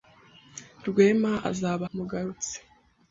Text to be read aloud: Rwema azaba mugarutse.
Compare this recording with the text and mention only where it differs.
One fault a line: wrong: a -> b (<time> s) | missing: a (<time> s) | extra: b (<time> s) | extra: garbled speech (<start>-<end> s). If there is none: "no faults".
no faults